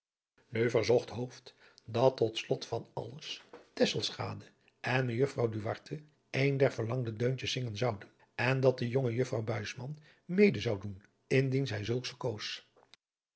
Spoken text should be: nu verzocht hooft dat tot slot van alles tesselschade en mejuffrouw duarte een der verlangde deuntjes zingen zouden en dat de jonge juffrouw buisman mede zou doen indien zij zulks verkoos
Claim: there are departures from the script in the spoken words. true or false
false